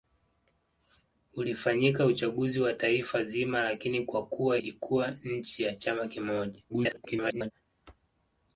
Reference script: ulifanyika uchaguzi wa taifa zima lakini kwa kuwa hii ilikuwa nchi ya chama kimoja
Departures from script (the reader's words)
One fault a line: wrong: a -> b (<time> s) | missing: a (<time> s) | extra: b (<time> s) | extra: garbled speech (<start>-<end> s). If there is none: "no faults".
missing: hii (4.6 s)
extra: garbled speech (6.7-7.5 s)